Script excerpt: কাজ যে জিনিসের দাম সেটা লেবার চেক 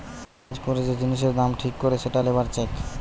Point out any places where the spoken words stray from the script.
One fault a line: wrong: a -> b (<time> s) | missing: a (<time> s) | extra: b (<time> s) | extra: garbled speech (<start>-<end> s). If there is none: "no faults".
extra: করে (0.7 s)
extra: ঠিক করে (1.6 s)